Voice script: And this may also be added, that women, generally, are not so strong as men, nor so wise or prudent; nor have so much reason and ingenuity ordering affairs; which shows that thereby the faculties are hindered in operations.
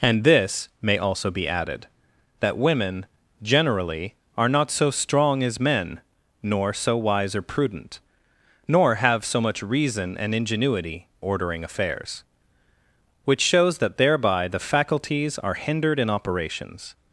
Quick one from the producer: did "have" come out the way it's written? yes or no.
yes